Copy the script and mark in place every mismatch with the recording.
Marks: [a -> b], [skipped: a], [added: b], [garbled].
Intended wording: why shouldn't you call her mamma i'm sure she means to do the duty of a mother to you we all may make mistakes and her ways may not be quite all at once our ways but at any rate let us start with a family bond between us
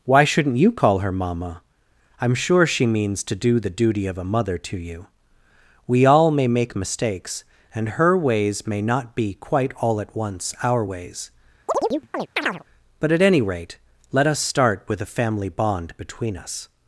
why shouldn't you call her mamma i'm sure she means to do the duty of a mother to you we all may make mistakes and her ways may not be quite all at once our ways but at any rate let us start with a family bond between us